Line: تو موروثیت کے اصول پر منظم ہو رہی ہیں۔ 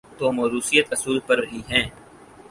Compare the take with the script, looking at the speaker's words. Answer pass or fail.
fail